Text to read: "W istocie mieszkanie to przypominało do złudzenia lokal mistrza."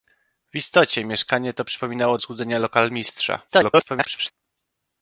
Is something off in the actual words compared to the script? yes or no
yes